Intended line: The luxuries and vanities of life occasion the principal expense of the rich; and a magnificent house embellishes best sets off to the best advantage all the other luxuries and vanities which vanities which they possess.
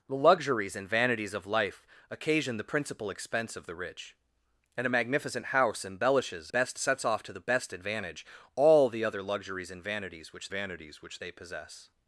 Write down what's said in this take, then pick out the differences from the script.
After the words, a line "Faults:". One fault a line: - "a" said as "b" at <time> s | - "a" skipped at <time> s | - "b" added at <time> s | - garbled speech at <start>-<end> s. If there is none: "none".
The luxuries and vanities of life occasion the principal expense of the rich; and a magnificent house embellishes best sets off to the best advantage all the other luxuries and vanities which vanities which they possess.
Faults:
none